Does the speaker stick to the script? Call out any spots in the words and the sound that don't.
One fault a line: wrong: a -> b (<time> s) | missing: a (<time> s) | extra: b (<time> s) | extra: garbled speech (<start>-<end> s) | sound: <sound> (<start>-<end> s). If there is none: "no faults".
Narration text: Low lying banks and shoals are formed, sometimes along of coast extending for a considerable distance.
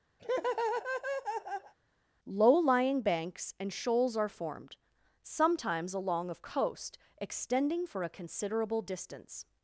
sound: laugh (0.2-1.7 s)